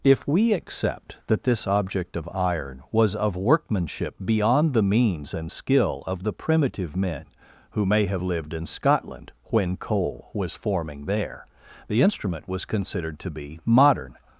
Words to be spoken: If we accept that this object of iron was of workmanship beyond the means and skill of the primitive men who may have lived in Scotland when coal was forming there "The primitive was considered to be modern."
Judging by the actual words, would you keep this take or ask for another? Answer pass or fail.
fail